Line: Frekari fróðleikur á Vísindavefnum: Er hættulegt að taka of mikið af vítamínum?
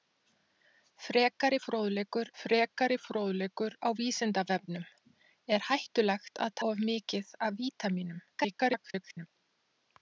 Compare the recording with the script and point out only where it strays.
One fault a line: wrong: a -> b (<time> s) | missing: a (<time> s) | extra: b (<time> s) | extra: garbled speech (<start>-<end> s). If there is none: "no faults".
extra: frekari fróðleikur (2.4 s)
missing: taka (6.6 s)
extra: garbled speech (8.3-9.3 s)